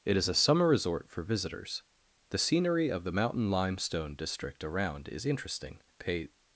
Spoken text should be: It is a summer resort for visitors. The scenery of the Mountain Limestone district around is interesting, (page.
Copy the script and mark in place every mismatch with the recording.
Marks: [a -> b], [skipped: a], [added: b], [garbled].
It is a summer resort for visitors. The scenery of the Mountain Limestone district around is interesting, [(page. -> pay]